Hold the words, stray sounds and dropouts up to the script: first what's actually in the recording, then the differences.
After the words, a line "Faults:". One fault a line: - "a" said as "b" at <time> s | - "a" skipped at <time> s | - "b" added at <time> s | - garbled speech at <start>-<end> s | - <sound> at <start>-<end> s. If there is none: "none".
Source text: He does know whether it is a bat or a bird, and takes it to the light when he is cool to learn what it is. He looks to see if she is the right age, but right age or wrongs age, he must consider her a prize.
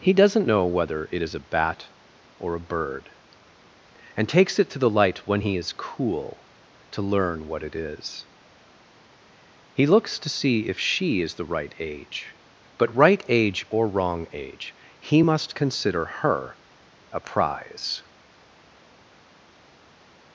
He doesn't know whether it is a bat or a bird, and takes it to the light when he is cool to learn what it is. He looks to see if she is the right age, but right age or wrong age, he must consider her a prize.
Faults:
- "does" said as "doesn't" at 0.1 s
- "wrongs" said as "wrong" at 13.9 s